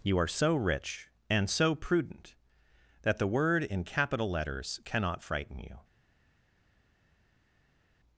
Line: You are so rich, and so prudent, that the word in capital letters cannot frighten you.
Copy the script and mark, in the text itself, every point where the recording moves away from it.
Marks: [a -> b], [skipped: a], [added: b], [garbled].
You are so rich, and so prudent, that the word in capital letters cannot frighten you.